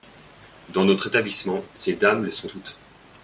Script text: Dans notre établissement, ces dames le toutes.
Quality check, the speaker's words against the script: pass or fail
fail